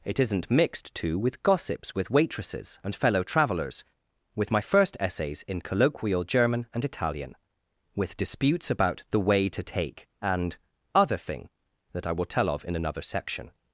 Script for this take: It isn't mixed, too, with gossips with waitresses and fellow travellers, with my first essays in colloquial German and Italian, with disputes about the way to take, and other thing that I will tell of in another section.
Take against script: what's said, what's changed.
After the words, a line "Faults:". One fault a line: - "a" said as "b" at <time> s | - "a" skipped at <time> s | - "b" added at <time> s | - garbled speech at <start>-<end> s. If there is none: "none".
It isn't mixed, too, with gossips with waitresses and fellow travellers, with my first essays in colloquial German and Italian, with disputes about the way to take, and other thing that I will tell of in another section.
Faults:
none